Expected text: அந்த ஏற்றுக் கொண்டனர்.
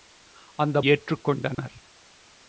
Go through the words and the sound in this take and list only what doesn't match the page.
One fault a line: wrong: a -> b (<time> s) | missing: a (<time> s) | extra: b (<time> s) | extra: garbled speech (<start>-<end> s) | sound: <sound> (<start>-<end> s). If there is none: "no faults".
sound: dropout (1.5-1.6 s)